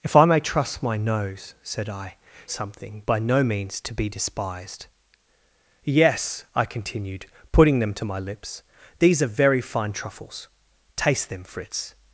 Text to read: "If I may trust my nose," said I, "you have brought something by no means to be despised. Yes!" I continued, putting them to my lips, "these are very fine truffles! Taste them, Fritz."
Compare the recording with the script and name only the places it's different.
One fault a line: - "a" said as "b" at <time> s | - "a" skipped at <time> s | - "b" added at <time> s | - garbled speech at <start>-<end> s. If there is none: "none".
- "you have brought" skipped at 2.2 s